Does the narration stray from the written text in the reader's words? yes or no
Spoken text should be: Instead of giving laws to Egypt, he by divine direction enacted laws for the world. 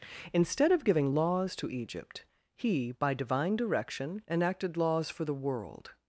no